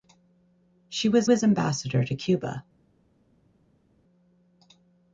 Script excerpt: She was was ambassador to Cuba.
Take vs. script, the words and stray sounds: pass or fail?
pass